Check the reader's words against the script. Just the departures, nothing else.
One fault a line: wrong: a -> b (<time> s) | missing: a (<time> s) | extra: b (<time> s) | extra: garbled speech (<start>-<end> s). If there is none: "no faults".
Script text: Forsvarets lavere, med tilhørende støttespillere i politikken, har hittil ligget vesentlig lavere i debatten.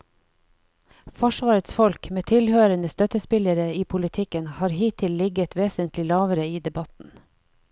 wrong: lavere -> folk (1.8 s)